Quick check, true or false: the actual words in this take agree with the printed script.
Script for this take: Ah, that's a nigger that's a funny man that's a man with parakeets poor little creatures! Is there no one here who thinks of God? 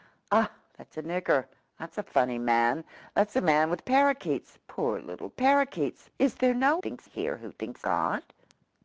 false